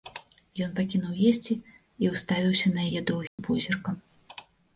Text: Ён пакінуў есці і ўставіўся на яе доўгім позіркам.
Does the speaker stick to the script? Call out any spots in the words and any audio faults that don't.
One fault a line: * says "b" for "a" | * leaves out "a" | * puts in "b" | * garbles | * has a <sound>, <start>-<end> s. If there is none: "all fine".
* has a dropout, 3.3-3.4 s